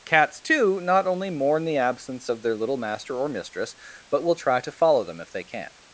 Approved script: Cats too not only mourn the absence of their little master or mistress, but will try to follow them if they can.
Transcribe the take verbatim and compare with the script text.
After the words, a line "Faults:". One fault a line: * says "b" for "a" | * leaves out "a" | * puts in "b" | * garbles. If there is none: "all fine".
Cats too not only mourn the absence of their little master or mistress, but will try to follow them if they can.
Faults:
all fine